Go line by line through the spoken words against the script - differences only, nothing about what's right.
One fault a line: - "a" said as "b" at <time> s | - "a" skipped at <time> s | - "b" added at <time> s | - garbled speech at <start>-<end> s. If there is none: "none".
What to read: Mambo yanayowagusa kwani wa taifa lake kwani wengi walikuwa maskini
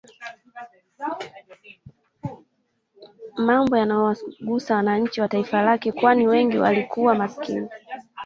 - "kwani" said as "wananchi" at 4.8 s